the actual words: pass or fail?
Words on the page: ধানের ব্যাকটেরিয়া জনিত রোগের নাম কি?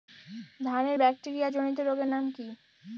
pass